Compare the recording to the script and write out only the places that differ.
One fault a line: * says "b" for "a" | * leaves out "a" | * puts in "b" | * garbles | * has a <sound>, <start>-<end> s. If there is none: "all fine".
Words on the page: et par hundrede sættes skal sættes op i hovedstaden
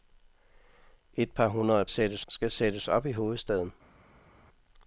all fine